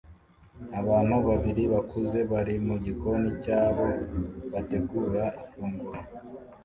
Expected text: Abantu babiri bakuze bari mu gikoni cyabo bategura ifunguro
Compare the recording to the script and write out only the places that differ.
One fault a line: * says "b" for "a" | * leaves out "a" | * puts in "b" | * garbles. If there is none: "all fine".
all fine